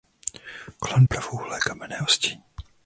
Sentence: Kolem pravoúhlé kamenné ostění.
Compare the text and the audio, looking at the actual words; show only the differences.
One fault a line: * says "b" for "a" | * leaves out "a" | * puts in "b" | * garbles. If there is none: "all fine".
all fine